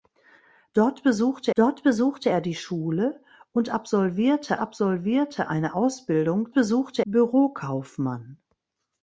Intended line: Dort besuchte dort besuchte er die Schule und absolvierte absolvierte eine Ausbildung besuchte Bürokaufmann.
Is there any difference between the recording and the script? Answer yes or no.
no